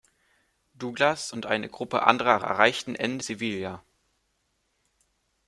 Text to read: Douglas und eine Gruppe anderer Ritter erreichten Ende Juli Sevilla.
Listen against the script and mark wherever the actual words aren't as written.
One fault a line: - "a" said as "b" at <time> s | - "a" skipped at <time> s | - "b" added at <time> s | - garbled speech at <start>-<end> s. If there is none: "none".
- "Ritter" skipped at 2.4 s
- "Juli" skipped at 3.2 s